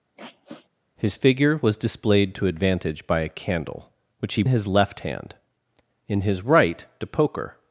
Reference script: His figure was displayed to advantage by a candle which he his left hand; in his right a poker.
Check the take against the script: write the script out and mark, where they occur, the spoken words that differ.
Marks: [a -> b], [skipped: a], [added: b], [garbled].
His figure was displayed to advantage by a candle which he his left hand; in his right a poker.